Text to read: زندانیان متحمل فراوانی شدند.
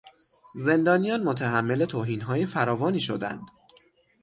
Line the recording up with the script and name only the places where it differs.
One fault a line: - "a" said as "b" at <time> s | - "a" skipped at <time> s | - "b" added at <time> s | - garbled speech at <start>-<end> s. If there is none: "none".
- "توهینهای" added at 1.8 s